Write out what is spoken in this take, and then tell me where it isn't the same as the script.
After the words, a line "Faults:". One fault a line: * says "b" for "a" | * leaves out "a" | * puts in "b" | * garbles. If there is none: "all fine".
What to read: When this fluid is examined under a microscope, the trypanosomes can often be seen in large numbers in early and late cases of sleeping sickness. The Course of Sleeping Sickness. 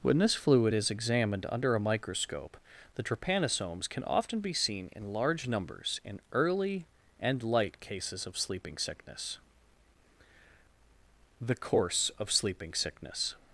When this fluid is examined under a microscope, the trypanosomes can often be seen in large numbers in early and light cases of sleeping sickness. The Course of Sleeping Sickness.
Faults:
* says "light" for "late"